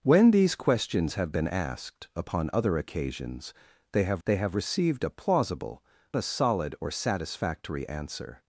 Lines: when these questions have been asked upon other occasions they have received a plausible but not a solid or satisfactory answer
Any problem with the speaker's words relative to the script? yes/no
yes